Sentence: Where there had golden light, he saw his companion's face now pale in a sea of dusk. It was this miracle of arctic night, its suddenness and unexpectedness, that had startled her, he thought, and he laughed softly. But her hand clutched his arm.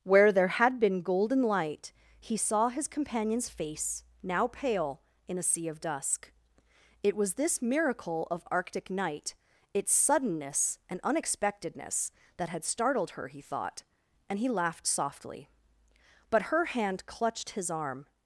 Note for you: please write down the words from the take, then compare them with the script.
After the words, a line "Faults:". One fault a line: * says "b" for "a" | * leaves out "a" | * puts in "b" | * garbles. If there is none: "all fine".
Where there had been golden light, he saw his companion's face now pale in a sea of dusk. It was this miracle of arctic night, its suddenness and unexpectedness, that had startled her, he thought, and he laughed softly. But her hand clutched his arm.
Faults:
* puts in "been"